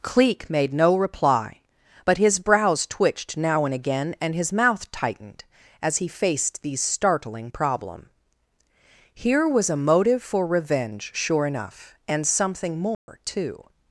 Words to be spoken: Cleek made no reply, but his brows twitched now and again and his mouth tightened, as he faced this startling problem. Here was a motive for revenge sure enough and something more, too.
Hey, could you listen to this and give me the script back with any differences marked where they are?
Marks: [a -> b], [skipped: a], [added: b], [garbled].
Cleek made no reply, but his brows twitched now and again and his mouth tightened, as he faced [this -> these] startling problem. Here was a motive for revenge sure enough and something more, too.